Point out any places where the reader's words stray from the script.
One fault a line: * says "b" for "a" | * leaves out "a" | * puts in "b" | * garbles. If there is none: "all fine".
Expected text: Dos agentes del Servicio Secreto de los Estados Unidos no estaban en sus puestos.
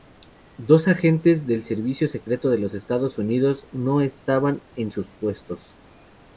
all fine